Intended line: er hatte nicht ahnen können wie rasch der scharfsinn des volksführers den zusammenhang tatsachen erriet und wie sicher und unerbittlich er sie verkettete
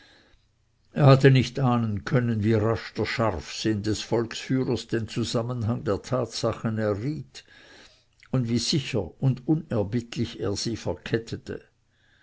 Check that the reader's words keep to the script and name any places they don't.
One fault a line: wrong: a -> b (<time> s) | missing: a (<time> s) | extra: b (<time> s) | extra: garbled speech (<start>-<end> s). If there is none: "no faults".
extra: der (5.8 s)